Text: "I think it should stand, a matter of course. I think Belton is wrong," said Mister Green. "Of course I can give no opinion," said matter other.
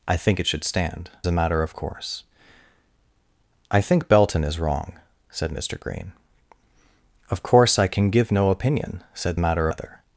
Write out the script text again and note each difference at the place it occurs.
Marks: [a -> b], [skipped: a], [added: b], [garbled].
"I think it should stand, a matter of course. I think Belton is wrong," said Mister Green. "Of course I can give no opinion," said matter other.